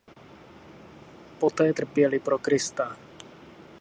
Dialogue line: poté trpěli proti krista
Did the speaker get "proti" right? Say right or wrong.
wrong